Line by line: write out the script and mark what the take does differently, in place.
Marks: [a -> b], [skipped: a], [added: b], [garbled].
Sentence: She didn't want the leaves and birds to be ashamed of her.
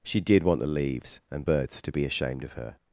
She [didn't -> did] want the leaves and birds to be ashamed of her.